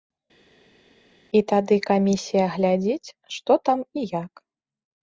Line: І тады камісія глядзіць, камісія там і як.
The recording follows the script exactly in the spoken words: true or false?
false